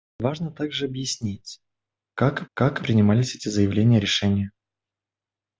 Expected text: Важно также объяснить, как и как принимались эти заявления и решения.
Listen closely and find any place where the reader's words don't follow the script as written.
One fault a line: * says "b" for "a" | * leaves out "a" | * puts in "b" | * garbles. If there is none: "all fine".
all fine